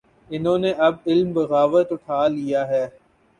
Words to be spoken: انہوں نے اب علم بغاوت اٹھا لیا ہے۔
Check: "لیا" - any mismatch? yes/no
no